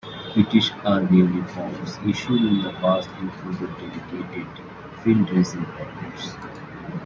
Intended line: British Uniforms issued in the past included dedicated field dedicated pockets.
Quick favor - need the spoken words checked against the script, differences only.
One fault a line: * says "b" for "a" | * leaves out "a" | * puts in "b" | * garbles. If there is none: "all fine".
* puts in "Army"
* says "dressing" for "dedicated"